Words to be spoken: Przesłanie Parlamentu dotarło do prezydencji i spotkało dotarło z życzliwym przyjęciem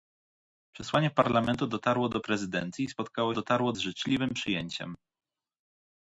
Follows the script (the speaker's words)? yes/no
yes